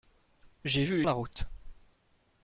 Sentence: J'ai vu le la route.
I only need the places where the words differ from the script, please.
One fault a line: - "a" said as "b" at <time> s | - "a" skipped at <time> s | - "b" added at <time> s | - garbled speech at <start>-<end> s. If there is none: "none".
none